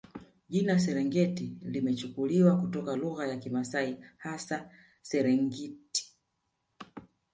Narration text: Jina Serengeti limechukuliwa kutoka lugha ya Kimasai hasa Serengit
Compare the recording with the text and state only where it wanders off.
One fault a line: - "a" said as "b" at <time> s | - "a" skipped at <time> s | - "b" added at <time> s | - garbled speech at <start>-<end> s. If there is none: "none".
none